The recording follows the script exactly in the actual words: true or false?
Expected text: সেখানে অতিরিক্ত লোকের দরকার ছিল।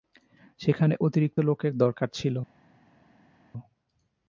true